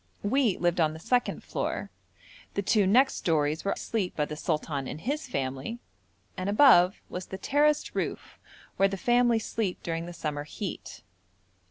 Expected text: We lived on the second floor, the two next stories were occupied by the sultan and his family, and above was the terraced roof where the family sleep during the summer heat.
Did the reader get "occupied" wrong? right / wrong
wrong